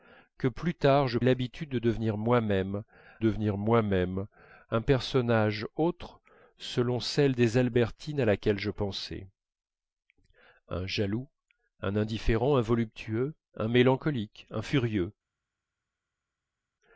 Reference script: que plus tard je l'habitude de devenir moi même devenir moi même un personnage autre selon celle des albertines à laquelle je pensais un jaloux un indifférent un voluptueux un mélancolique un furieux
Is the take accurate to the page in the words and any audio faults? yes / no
yes